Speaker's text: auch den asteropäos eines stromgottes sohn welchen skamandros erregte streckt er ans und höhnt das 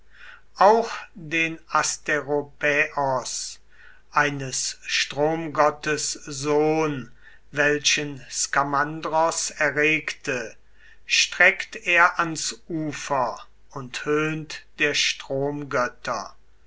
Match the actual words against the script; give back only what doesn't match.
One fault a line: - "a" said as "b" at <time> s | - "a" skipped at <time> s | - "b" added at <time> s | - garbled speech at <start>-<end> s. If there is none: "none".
- "ufer" added at 12.7 s
- "das" said as "der" at 14.8 s